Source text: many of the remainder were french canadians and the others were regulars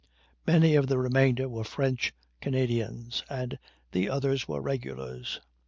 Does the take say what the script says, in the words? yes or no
yes